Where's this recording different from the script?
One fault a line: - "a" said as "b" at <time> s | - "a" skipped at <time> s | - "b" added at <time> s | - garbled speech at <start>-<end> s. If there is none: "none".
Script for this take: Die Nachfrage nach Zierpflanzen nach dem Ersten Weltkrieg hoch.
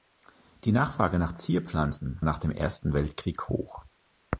none